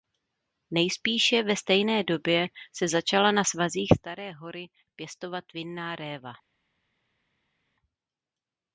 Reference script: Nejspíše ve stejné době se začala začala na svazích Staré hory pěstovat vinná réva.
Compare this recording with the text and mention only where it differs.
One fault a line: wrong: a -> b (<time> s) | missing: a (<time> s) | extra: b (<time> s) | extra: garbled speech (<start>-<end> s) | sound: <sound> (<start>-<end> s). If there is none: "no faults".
missing: začala (3.3 s)